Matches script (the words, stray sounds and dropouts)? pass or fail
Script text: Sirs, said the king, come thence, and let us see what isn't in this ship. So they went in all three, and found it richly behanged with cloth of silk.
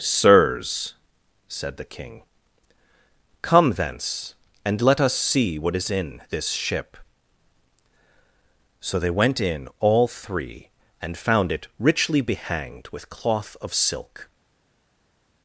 fail